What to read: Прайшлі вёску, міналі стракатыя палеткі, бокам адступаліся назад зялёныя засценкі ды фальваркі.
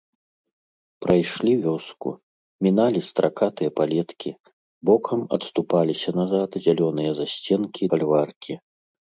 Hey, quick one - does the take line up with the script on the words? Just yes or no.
no